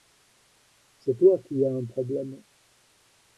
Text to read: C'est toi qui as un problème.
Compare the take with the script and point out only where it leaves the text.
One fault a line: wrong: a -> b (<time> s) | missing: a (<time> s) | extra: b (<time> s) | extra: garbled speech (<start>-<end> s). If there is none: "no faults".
no faults